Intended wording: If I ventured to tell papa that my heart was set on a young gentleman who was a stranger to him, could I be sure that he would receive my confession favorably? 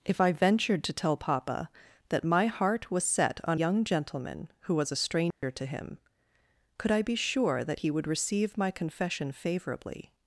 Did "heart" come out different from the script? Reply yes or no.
no